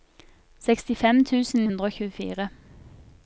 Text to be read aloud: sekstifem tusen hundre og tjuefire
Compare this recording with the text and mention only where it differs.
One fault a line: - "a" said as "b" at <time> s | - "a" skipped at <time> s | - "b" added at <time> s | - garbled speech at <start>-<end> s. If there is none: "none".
none